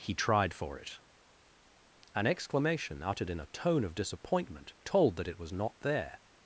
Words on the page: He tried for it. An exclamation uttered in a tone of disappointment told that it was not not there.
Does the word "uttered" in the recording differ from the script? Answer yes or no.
no